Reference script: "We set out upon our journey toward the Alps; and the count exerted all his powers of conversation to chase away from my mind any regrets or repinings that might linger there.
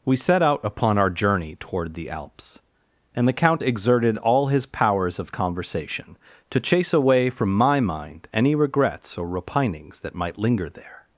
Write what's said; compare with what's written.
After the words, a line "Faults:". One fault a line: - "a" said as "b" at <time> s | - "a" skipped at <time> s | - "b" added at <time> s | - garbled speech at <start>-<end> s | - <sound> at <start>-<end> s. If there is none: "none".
"We set out upon our journey toward the Alps; and the count exerted all his powers of conversation to chase away from my mind any regrets or repinings that might linger there.
Faults:
none